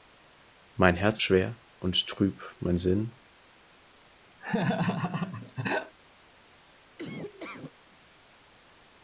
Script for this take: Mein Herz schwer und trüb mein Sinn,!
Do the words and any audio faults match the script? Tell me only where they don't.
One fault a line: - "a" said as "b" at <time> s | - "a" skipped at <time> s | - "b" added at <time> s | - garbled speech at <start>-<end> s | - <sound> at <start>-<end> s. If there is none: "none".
- laugh at 4.4-5.9 s
- laugh at 7.0-7.7 s